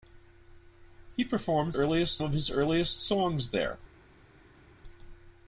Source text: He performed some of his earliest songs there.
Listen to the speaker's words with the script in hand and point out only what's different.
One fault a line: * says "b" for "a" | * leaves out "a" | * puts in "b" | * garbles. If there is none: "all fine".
* says "earliest" for "some"